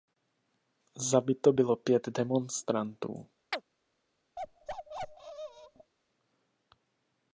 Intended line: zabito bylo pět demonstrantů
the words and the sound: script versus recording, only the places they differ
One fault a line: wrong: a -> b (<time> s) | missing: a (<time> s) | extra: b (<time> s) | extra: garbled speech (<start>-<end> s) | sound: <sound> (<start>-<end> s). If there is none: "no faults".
sound: chirp (3.5-3.6 s)
sound: bark (4.4-5.9 s)